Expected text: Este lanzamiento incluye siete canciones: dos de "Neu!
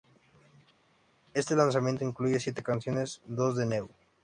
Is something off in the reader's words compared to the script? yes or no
no